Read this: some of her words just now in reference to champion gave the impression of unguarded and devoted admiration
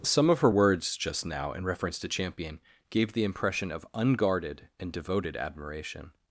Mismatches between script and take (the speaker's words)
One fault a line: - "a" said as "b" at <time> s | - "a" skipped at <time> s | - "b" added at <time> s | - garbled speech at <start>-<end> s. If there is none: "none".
none